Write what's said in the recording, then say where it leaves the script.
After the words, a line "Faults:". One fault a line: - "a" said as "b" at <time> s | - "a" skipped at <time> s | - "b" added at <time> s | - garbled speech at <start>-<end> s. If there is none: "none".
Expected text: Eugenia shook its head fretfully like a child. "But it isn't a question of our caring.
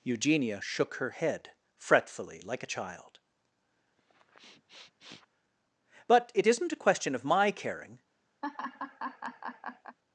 Eugenia shook her head fretfully like a child. "But it isn't a question of my caring.
Faults:
- "its" said as "her" at 1.0 s
- "our" said as "my" at 7.2 s